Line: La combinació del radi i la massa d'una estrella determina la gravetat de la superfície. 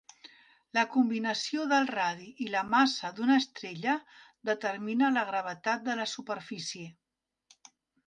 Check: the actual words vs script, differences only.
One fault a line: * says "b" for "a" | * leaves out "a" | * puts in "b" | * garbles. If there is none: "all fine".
all fine